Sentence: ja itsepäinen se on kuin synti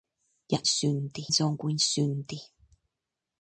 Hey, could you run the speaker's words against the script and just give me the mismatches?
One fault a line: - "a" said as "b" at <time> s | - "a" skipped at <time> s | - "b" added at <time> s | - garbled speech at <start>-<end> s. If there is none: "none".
- "itsepäinen" said as "synti" at 0.6 s